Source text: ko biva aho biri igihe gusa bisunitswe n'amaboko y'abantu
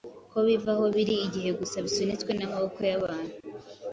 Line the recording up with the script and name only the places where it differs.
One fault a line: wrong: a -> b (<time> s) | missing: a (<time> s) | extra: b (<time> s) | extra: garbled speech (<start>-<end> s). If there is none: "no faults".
no faults